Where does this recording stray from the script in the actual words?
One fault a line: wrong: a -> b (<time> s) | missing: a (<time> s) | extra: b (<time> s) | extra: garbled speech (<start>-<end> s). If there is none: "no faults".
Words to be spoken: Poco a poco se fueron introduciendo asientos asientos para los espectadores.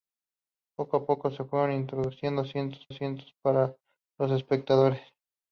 no faults